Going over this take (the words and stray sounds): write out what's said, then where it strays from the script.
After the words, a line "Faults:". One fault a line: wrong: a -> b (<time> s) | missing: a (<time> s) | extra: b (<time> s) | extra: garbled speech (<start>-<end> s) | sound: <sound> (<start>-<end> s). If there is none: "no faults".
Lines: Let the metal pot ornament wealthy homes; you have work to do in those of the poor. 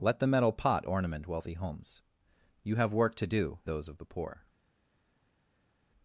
Let the metal pot ornament wealthy homes; you have work to do those of the poor.
Faults:
missing: in (3.6 s)